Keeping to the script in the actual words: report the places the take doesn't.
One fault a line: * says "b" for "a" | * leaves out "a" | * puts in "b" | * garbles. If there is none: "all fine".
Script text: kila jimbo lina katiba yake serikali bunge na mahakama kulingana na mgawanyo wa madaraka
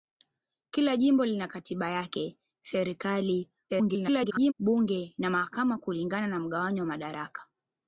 * garbles